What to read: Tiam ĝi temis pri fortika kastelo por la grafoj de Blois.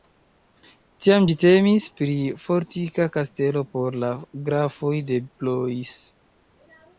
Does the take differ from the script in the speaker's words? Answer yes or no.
no